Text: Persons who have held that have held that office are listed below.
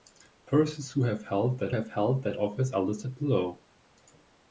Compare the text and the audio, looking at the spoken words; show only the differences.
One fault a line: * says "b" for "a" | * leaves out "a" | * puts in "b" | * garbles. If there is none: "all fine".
all fine